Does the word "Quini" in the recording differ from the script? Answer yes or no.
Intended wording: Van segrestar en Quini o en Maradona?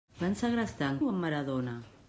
yes